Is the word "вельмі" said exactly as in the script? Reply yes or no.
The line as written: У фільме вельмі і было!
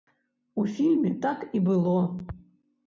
no